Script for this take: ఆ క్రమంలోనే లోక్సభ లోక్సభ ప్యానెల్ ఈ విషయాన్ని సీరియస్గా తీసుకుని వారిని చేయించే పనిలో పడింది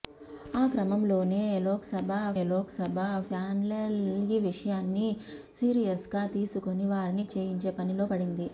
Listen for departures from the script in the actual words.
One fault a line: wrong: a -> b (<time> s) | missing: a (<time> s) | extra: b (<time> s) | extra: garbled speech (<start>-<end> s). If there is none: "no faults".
no faults